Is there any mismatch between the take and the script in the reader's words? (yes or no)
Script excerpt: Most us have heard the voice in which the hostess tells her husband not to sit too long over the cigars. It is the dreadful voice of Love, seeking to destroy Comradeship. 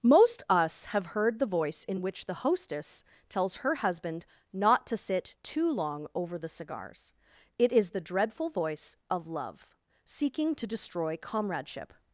no